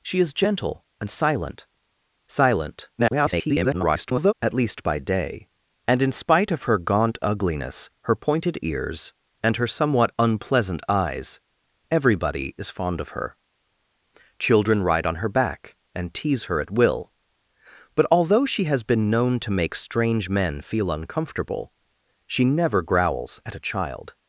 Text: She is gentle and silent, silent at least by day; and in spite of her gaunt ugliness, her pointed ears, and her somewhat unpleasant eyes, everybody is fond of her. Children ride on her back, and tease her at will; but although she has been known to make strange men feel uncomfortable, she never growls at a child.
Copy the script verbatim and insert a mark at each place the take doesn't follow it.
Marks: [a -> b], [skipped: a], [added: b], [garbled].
She is gentle and silent, silent [garbled] at least by day; and in spite of her gaunt ugliness, her pointed ears, and her somewhat unpleasant eyes, everybody is fond of her. Children ride on her back, and tease her at will; but although she has been known to make strange men feel uncomfortable, she never growls at a child.